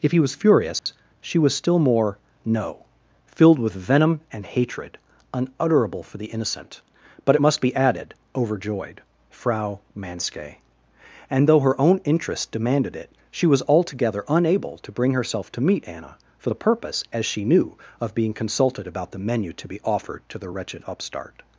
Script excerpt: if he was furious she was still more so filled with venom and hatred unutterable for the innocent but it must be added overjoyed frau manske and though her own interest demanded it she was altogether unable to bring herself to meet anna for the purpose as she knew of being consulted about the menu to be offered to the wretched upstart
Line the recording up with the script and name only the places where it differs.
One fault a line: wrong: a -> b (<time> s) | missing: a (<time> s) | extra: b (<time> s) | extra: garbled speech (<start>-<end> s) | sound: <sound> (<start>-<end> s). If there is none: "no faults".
sound: dropout (0.8-0.9 s)
wrong: so -> no (2.4 s)